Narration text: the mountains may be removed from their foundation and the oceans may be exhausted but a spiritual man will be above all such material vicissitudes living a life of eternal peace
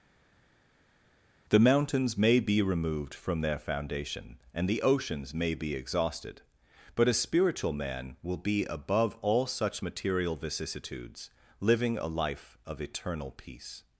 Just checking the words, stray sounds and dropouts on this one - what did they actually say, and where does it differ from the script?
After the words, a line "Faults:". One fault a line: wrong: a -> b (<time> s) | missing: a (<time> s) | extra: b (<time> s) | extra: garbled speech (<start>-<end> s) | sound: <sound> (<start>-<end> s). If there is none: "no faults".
the mountains may be removed from their foundation and the oceans may be exhausted but a spiritual man will be above all such material vicissitudes living a life of eternal peace
Faults:
no faults